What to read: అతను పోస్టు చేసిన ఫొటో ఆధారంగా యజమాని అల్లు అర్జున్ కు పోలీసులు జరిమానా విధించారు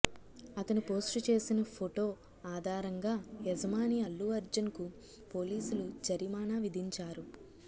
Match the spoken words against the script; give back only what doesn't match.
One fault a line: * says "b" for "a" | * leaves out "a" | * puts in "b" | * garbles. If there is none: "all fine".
all fine